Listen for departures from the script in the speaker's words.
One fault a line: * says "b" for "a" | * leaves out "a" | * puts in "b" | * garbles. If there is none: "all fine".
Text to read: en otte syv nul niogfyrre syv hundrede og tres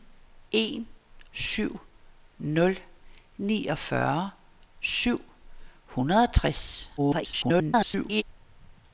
* leaves out "otte"
* garbles